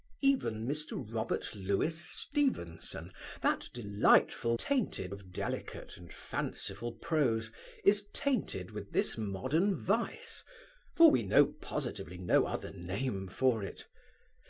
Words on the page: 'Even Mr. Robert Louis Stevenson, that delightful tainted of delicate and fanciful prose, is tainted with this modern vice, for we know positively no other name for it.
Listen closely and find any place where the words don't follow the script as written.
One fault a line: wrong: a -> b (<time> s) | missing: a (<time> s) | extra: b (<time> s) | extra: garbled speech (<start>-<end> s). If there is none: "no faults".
no faults